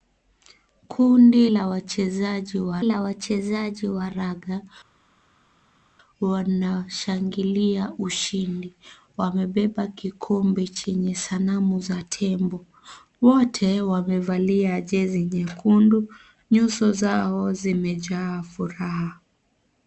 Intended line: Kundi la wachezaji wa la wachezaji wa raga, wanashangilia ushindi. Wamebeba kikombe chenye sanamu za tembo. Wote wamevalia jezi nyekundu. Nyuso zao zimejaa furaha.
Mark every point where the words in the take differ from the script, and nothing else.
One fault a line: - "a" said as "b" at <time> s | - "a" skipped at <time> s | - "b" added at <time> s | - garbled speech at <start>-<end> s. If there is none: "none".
none